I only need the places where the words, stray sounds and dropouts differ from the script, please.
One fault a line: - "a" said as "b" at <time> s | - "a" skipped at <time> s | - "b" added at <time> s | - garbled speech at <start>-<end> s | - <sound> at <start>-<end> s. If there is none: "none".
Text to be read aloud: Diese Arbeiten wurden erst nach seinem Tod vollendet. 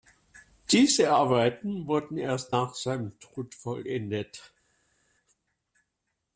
none